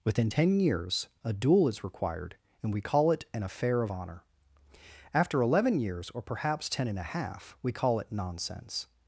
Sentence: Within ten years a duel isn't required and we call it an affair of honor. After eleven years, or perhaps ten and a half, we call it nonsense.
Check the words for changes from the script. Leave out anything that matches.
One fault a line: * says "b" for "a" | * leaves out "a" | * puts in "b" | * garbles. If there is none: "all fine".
* says "is" for "isn't"